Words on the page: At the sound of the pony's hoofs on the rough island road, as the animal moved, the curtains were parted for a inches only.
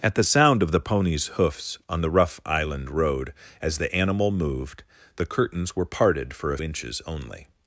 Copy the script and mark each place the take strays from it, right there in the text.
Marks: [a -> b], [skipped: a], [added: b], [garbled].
At the sound of the pony's hoofs on the rough island road, as the animal moved, the curtains were parted for a inches only.